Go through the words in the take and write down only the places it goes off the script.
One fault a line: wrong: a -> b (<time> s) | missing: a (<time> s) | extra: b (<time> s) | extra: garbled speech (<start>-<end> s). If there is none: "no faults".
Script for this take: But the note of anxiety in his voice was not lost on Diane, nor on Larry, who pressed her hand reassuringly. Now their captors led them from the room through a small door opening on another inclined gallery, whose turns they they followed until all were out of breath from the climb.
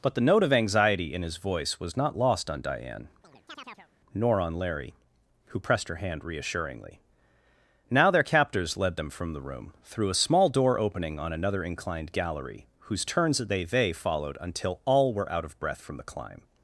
no faults